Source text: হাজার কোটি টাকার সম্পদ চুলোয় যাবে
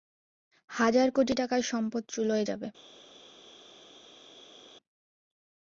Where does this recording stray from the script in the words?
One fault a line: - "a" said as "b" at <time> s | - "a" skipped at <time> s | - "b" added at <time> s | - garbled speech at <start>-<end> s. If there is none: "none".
none